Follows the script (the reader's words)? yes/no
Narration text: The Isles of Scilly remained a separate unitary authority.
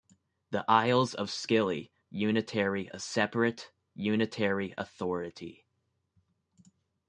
no